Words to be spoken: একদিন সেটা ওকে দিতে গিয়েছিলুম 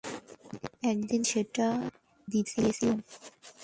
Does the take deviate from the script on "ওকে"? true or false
true